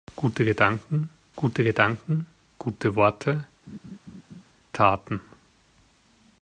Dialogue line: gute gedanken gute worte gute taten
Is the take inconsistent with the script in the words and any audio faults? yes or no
yes